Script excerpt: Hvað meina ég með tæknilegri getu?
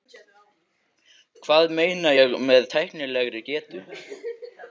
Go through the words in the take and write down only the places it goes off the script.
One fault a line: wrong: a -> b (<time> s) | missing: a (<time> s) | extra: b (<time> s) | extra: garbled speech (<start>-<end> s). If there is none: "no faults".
no faults